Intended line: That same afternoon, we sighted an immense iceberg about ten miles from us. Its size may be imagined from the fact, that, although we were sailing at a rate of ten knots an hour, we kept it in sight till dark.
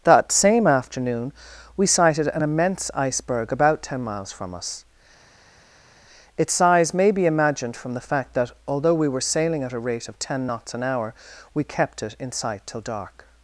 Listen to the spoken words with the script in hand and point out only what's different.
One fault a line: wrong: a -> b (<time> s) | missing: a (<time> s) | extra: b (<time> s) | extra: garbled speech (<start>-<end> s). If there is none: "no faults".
no faults